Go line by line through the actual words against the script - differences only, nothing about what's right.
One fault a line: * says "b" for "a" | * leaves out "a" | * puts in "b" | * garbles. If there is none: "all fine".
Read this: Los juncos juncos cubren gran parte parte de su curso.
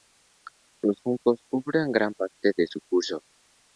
* leaves out "juncos"
* leaves out "parte"